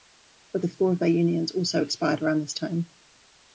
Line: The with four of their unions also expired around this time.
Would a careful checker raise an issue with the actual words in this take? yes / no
no